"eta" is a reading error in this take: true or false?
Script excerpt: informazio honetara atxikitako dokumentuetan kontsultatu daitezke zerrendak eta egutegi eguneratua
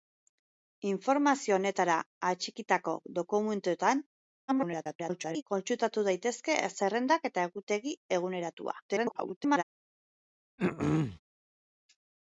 false